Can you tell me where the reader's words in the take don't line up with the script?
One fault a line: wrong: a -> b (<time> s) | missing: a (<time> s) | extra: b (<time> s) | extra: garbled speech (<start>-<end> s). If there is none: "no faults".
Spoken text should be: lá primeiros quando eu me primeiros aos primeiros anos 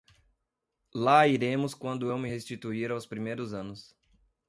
wrong: primeiros -> iremos (1.3 s)
wrong: primeiros -> restituir (2.3 s)